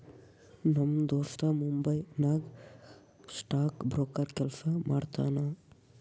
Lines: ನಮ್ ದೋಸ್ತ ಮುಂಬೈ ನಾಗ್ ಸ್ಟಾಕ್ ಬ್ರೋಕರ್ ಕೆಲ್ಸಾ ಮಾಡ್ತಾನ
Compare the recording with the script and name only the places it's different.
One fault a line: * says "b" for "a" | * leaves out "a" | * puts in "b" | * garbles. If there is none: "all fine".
all fine